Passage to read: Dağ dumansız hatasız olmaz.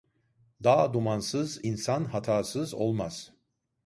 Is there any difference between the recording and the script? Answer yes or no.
yes